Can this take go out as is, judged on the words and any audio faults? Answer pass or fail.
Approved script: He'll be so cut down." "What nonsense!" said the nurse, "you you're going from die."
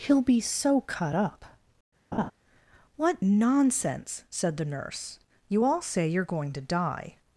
fail